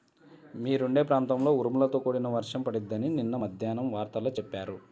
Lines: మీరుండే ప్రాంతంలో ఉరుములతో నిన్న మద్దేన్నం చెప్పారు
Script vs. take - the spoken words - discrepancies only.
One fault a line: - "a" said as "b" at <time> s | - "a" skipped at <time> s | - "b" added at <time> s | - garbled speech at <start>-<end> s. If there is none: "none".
- "కూడిన వర్షం పడిద్దని" added at 2.0 s
- "వార్తల్లో" added at 3.9 s